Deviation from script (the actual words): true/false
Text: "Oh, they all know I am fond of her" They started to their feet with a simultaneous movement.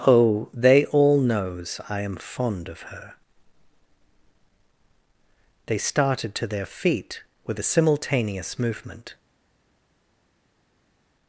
true